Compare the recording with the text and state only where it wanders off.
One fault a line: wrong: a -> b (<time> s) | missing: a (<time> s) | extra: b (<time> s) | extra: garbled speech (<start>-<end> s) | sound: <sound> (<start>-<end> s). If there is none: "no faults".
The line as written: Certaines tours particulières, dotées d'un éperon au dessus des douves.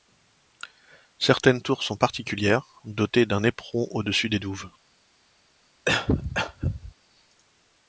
extra: sont (1.8 s)
sound: cough (5.9-6.9 s)